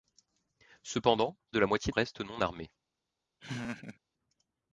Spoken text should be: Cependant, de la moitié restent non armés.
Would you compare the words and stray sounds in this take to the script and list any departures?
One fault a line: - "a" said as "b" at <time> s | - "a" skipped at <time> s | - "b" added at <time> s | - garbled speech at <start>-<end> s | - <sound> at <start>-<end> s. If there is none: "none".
- laugh at 3.4-4.0 s